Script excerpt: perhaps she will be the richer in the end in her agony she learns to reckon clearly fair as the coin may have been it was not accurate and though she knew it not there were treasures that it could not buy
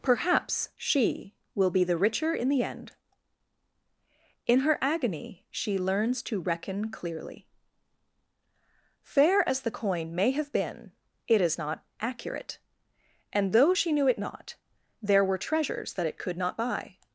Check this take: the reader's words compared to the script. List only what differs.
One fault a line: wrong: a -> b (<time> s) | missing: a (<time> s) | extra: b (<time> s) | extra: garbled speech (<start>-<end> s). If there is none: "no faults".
wrong: was -> is (11.4 s)